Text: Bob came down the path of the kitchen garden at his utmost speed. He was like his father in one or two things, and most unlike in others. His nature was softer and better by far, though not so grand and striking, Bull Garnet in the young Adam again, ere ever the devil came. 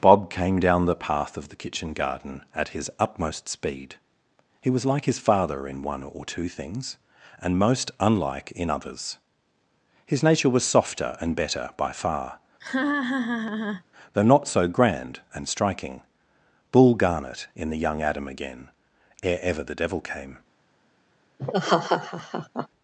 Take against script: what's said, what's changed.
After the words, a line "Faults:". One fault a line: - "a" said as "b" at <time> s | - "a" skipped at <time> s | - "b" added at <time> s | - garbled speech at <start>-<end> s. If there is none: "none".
Bob came down the path of the kitchen garden at his utmost speed. He was like his father in one or two things, and most unlike in others. His nature was softer and better by far, though not so grand and striking, Bull Garnet in the young Adam again, ere ever the devil came.
Faults:
none